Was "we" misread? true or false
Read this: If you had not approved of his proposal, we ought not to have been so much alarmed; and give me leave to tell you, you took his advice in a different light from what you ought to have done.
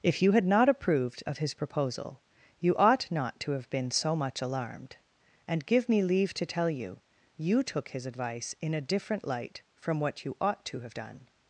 true